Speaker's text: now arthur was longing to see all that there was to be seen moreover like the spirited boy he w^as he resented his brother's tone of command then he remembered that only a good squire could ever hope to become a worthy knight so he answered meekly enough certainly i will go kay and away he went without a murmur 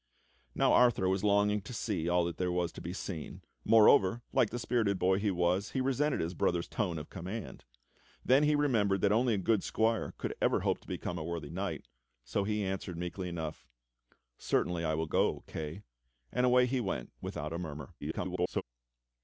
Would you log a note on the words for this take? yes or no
yes